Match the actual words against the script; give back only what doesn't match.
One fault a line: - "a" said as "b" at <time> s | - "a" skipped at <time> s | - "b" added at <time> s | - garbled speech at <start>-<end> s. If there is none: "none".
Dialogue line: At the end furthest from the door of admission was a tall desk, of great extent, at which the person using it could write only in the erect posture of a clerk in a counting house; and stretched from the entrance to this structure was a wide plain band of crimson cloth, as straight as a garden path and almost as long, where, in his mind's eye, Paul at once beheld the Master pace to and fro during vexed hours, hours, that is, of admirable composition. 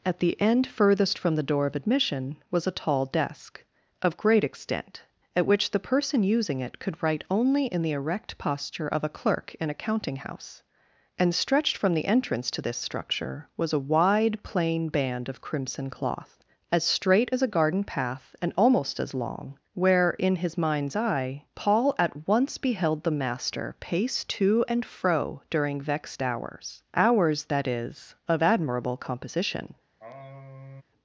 none